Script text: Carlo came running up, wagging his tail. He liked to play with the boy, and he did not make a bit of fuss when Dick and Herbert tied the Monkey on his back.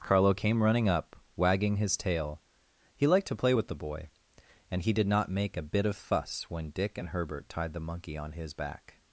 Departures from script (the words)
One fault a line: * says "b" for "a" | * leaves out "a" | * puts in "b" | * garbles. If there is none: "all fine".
all fine